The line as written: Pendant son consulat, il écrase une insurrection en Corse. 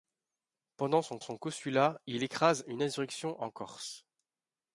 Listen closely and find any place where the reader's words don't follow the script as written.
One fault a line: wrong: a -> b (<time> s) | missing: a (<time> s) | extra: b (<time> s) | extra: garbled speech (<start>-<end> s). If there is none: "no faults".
extra: son (1.2 s)